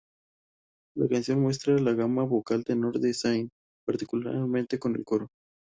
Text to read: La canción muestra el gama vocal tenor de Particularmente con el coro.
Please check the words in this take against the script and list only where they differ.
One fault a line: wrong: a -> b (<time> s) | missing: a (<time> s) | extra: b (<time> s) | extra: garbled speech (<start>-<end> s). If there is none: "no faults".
wrong: el -> la (1.8 s)
extra: Zayn (3.1 s)